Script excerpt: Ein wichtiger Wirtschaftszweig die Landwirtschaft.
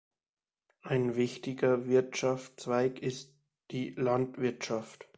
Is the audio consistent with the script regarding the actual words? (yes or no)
no